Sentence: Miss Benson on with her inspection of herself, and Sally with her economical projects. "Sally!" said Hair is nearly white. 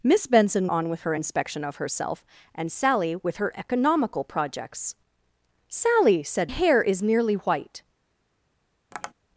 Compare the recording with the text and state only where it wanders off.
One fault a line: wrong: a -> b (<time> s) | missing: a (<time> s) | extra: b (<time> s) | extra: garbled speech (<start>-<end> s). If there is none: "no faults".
no faults